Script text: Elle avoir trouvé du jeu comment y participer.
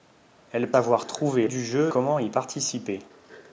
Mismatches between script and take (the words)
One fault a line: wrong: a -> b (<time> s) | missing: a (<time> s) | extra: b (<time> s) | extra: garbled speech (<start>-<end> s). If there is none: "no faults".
no faults